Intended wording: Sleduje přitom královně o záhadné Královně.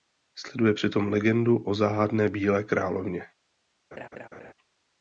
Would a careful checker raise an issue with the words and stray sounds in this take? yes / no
yes